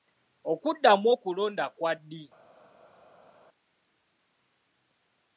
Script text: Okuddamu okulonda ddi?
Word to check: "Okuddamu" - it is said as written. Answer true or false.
true